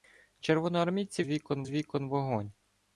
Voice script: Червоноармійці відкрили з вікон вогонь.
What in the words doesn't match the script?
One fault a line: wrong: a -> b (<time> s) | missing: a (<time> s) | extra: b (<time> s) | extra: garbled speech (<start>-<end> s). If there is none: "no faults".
wrong: відкрили -> вікон (1.3 s)